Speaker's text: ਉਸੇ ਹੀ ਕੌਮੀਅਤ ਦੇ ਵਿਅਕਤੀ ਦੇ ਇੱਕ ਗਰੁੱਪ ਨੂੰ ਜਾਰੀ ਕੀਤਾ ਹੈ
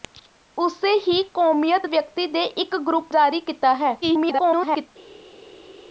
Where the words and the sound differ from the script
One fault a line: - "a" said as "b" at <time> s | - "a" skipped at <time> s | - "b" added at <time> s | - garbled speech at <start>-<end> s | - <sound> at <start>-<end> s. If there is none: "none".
- "ਦੇ" skipped at 1.9 s
- "ਨੂੰ" skipped at 3.1 s
- garbled speech at 4.0-4.9 s